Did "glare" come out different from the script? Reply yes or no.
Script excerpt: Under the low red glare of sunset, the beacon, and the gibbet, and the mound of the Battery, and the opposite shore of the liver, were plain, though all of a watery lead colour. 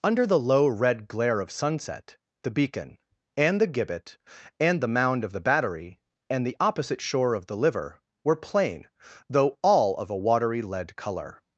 no